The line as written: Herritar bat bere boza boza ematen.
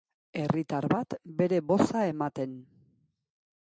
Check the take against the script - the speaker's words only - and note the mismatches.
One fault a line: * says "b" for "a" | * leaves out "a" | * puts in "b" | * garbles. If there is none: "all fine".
* leaves out "boza"